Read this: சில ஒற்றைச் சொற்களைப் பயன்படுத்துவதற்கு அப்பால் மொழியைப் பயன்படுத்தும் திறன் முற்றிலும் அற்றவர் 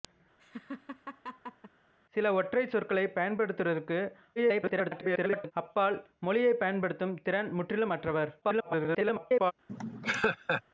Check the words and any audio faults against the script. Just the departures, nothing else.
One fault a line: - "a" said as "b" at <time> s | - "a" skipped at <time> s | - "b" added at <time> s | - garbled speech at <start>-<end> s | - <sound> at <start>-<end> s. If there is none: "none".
- laugh at 0.4-1.7 s
- garbled speech at 4.4-5.5 s
- garbled speech at 8.4-9.5 s
- laugh at 9.7-10.6 s